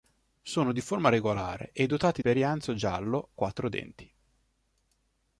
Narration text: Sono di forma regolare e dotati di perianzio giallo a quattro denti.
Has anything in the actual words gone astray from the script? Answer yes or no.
yes